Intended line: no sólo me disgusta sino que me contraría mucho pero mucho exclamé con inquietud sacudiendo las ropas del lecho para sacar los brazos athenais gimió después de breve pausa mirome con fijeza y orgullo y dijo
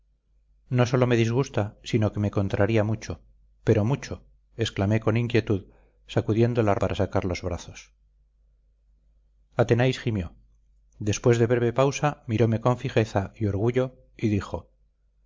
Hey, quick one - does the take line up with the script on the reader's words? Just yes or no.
no